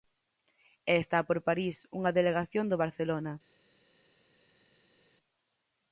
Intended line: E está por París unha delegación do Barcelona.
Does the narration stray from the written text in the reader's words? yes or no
no